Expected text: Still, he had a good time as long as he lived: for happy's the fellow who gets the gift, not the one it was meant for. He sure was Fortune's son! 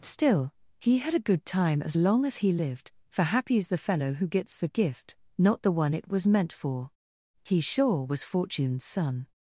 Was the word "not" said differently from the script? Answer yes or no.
no